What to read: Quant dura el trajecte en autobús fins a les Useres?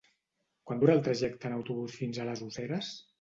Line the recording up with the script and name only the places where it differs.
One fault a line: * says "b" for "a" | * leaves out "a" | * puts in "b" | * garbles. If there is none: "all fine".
all fine